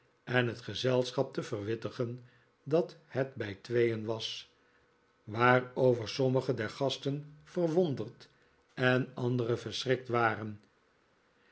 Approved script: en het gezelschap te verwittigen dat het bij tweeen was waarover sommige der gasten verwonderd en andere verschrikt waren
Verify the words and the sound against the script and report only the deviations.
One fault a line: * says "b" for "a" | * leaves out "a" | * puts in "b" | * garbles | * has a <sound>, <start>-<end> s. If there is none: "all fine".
all fine